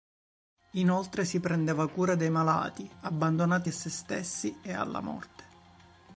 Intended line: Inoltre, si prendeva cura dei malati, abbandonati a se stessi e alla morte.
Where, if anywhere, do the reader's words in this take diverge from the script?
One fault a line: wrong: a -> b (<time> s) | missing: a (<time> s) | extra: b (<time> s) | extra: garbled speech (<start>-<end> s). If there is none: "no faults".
no faults